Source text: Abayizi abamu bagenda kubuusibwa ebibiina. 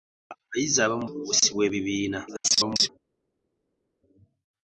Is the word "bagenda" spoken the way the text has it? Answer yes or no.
no